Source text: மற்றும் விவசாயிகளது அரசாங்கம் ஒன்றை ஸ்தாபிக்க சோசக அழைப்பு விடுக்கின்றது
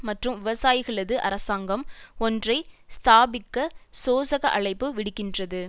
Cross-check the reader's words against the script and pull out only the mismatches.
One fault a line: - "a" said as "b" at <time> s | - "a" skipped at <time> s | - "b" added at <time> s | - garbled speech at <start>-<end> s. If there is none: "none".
none